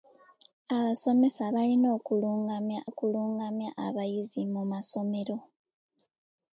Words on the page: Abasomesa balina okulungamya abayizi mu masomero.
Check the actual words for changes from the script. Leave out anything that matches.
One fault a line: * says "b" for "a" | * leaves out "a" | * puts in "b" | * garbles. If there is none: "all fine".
* puts in "okulungamya"